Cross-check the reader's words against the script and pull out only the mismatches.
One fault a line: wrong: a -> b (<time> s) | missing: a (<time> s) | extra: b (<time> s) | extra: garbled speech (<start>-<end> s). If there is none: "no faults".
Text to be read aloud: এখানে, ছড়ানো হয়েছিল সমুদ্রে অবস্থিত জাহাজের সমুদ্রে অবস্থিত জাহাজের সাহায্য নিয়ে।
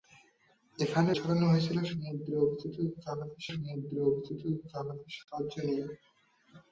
no faults